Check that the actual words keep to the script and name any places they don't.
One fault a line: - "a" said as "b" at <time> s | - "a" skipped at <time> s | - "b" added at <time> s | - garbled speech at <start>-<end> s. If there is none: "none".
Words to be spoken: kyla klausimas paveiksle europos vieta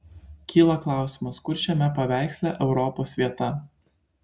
- "kur šiame" added at 1.5 s